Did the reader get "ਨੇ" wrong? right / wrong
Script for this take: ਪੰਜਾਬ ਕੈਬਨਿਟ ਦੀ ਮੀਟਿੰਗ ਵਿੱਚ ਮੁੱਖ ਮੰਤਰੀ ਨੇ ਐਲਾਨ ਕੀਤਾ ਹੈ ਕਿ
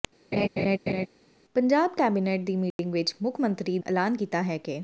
wrong